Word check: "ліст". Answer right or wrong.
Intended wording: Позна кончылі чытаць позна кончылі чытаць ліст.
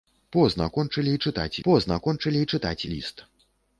right